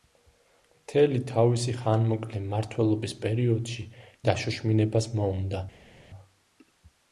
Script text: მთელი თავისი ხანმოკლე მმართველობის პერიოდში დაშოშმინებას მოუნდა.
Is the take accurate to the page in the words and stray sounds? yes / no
yes